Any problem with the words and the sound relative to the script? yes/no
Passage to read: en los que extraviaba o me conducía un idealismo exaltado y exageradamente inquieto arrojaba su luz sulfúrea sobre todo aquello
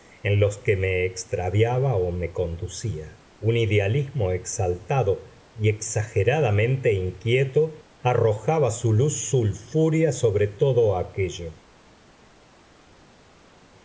yes